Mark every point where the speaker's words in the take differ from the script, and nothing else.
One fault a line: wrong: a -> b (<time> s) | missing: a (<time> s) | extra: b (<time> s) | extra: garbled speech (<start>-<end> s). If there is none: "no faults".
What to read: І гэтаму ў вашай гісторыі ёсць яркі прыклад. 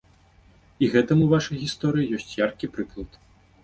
no faults